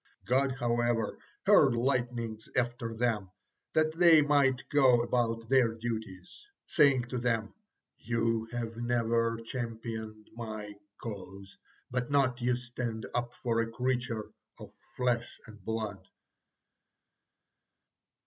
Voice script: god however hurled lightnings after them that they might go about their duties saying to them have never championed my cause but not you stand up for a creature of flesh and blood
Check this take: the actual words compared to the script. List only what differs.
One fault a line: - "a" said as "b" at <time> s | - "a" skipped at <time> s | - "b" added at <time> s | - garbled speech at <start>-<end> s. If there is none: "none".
- "you" added at 8.0 s